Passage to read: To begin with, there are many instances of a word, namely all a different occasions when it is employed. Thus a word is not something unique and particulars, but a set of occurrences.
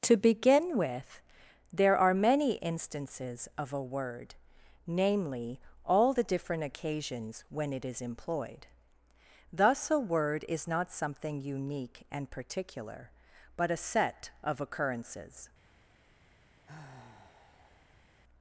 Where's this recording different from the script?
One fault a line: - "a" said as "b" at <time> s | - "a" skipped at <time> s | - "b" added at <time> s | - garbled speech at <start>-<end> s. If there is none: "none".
- "a" said as "the" at 6.1 s
- "particulars" said as "particular" at 12.3 s